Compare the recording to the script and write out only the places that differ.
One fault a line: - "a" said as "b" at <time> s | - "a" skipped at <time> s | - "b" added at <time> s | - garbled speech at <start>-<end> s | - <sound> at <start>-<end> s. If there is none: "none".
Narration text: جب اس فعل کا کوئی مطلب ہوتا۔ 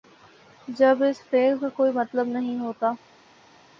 - "نہیں" added at 2.3 s